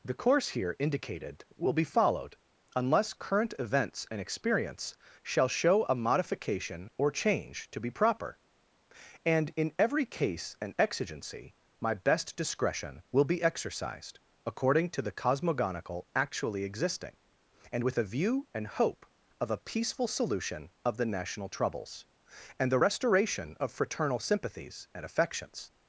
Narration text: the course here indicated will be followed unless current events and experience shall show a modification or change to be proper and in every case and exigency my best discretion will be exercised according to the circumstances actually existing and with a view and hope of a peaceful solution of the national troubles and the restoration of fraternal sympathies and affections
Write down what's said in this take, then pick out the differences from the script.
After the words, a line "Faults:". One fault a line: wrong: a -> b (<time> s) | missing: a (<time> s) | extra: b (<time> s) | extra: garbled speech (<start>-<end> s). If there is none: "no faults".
the course here indicated will be followed unless current events and experience shall show a modification or change to be proper and in every case and exigency my best discretion will be exercised according to the cosmogonical actually existing and with a view and hope of a peaceful solution of the national troubles and the restoration of fraternal sympathies and affections
Faults:
wrong: circumstances -> cosmogonical (15.1 s)